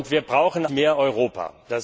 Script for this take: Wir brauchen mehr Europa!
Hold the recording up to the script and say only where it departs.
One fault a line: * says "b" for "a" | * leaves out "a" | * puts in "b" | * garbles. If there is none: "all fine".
all fine